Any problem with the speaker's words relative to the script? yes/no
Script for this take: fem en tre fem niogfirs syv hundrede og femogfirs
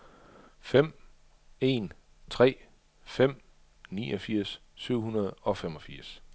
no